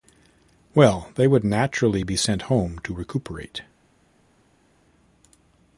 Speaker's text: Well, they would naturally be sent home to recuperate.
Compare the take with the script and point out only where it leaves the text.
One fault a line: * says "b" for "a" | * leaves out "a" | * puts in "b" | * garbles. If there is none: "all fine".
all fine